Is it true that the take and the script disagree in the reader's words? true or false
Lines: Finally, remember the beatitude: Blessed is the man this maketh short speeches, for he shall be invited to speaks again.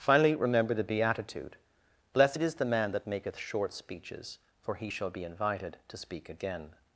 true